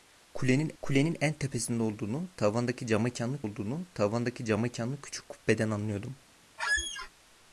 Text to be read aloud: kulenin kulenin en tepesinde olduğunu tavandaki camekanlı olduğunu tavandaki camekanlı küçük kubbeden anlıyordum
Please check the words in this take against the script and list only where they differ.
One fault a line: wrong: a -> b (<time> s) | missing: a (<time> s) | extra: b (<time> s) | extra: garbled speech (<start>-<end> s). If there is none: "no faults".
no faults